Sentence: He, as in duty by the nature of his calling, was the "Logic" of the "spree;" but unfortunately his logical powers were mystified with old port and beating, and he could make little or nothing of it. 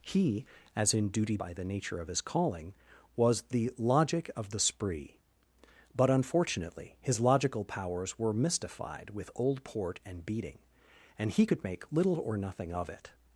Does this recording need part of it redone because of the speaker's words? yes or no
no